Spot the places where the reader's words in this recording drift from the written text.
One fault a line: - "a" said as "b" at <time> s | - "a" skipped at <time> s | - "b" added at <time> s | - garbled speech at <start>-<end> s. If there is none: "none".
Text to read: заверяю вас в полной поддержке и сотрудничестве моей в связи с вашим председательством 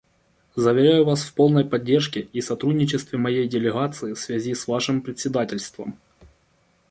- "делегации" added at 3.5 s